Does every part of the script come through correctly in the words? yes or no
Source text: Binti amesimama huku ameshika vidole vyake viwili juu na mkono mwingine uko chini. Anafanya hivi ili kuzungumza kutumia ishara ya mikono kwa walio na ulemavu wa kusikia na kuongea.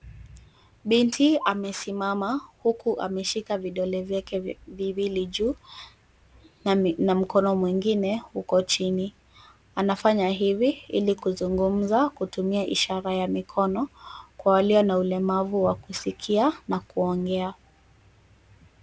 yes